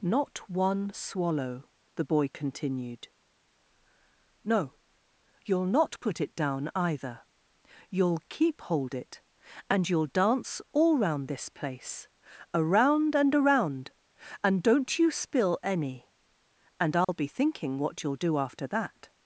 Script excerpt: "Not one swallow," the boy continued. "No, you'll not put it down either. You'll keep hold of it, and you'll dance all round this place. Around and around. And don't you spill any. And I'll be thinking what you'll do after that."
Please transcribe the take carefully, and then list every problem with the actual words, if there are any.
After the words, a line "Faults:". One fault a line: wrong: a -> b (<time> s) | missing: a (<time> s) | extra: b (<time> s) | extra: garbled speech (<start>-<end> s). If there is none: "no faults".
"Not one swallow," the boy continued. "No, you'll not put it down either. You'll keep hold it, and you'll dance all round this place. Around and around. And don't you spill any. And I'll be thinking what you'll do after that."
Faults:
missing: of (8.9 s)